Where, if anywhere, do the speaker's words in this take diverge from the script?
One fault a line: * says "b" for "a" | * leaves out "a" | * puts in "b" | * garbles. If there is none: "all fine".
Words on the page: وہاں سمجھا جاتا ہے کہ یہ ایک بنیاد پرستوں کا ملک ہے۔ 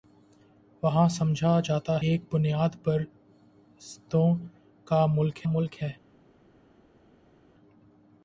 * leaves out "ہے کہ یہ"
* puts in "ملک"